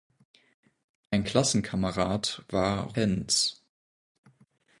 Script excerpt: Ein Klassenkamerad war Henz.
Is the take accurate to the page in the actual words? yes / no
yes